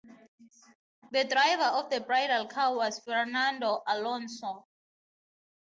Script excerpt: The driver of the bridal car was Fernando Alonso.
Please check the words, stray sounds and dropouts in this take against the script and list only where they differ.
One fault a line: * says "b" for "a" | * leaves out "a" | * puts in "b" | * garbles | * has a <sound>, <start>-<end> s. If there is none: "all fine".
all fine